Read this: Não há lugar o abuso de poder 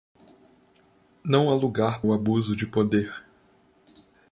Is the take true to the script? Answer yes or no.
yes